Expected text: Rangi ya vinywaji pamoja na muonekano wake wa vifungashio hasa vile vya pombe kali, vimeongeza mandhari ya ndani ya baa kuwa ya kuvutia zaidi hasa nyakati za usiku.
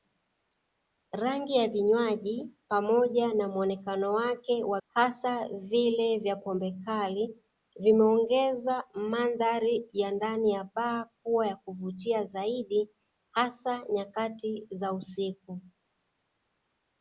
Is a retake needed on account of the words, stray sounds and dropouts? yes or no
yes